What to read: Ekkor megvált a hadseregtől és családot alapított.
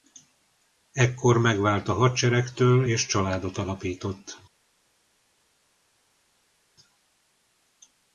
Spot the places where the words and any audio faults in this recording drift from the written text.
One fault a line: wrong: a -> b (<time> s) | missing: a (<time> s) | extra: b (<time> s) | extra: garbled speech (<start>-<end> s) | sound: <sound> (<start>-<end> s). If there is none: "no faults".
no faults